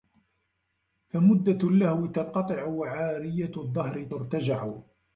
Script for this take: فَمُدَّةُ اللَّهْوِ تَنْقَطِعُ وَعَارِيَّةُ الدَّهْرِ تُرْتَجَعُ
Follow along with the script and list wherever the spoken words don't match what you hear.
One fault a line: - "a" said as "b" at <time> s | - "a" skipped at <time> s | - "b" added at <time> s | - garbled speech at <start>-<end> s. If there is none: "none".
none